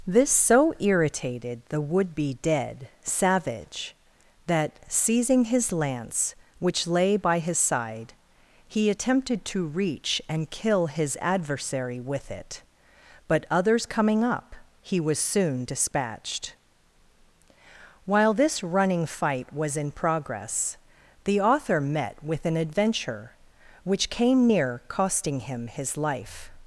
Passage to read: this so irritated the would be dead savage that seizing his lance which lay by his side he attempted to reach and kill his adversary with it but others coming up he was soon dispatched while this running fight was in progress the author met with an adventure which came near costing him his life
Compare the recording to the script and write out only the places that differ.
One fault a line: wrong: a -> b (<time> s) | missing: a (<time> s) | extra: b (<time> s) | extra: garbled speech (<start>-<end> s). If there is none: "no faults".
no faults